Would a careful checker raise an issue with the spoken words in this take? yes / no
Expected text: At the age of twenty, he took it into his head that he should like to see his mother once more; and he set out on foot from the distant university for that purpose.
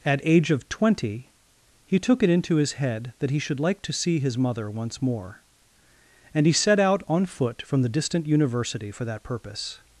yes